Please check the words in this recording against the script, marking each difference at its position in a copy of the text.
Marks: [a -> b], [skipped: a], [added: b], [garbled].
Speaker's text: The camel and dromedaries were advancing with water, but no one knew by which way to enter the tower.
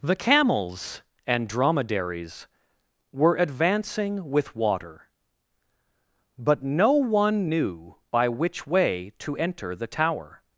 The [camel -> camels] and dromedaries were advancing with water, but no one knew by which way to enter the tower.